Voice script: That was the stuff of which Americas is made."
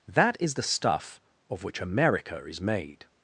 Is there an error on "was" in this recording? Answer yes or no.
yes